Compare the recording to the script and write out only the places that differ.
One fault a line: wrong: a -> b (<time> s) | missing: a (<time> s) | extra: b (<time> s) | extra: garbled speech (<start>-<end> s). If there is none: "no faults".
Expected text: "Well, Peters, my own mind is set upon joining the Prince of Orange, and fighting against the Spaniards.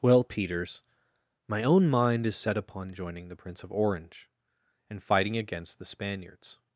no faults